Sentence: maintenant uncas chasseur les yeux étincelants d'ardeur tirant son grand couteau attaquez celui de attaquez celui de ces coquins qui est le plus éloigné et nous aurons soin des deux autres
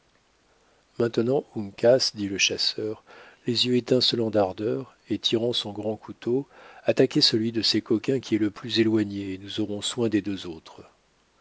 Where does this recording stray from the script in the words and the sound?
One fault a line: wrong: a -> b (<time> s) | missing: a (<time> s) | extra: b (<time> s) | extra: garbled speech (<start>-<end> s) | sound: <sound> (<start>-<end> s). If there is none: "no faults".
extra: dit le (2.1 s)
extra: et (5.1 s)
missing: attaquez celui de (7.6 s)